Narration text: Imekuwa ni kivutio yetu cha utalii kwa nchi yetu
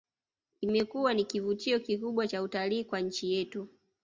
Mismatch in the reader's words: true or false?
true